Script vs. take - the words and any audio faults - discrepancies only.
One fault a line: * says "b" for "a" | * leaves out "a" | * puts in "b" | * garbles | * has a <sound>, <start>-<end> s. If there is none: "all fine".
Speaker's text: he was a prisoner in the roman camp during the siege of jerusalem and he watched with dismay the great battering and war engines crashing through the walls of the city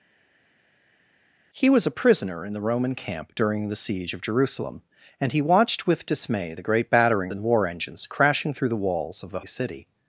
all fine